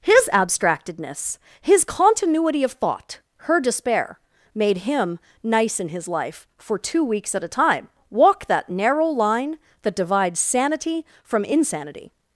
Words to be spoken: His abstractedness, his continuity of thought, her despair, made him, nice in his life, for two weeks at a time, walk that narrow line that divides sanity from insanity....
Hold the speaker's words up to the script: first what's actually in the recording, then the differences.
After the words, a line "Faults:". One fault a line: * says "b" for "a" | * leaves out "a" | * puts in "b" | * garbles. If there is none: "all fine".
His abstractedness, his continuity of thought, her despair, made him, nice in his life, for two weeks at a time, walk that narrow line that divides sanity from insanity....
Faults:
all fine